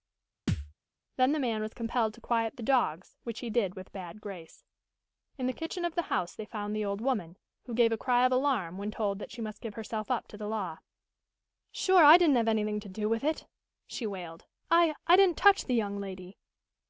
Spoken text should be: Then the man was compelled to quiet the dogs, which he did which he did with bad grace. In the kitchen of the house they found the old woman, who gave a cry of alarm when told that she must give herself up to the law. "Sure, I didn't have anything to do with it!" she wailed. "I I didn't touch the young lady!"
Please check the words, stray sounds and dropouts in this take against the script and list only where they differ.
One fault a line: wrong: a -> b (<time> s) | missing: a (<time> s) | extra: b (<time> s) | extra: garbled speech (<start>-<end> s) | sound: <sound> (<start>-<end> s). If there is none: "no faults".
sound: thud (0.5-0.7 s)
missing: which he did (3.7 s)